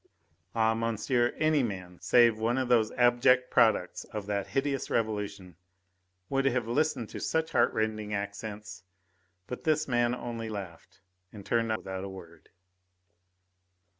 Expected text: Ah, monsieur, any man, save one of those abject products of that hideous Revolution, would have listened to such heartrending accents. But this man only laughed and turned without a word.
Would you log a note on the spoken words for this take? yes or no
no